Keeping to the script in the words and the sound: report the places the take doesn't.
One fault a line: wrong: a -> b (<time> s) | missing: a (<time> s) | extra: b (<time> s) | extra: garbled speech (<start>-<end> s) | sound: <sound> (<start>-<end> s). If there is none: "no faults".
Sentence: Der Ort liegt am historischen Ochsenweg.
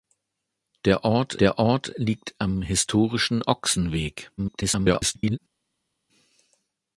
extra: der Ort (1.4 s)
extra: garbled speech (4.4-5.4 s)